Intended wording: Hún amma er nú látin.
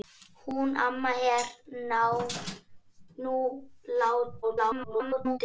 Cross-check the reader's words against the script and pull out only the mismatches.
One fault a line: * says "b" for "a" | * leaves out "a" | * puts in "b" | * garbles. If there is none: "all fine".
* garbles